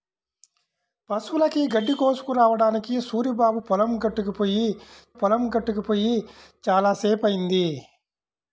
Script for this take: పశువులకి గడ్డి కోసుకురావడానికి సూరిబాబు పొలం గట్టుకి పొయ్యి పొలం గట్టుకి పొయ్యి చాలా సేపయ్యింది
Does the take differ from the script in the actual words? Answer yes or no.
no